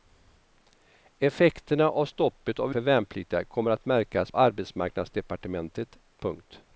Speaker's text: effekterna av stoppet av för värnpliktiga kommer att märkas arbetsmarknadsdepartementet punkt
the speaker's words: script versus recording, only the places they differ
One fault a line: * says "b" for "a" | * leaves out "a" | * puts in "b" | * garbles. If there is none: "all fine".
all fine